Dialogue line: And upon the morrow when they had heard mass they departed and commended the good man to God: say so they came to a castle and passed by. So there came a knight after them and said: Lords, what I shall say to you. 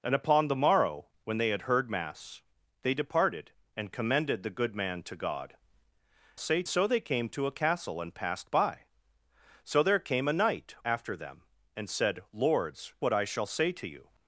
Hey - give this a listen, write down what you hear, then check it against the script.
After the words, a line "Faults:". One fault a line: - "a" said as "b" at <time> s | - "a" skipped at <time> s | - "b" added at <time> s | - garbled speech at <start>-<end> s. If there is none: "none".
And upon the morrow when they had heard mass they departed and commended the good man to God: say so they came to a castle and passed by. So there came a knight after them and said: Lords, what I shall say to you.
Faults:
none